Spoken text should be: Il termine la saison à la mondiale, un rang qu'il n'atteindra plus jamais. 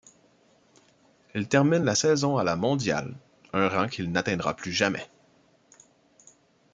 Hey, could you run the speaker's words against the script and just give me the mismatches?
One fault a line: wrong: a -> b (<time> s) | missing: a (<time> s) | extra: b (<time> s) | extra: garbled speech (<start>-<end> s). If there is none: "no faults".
no faults